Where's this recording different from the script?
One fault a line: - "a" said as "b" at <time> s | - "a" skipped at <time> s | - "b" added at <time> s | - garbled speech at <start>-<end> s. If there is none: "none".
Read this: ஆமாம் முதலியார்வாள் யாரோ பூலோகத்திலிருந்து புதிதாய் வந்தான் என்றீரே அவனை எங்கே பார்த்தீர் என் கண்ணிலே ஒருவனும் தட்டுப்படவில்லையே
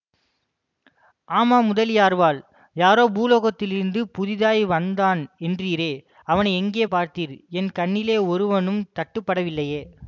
none